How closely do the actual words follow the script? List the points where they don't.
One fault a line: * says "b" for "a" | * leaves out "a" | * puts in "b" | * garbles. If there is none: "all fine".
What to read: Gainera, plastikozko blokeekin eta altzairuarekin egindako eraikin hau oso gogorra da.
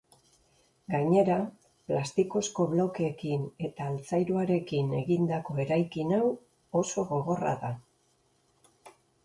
all fine